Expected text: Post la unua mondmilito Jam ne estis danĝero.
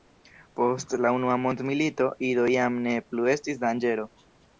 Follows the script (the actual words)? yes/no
no